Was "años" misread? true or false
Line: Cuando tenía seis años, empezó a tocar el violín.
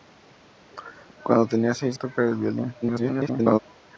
true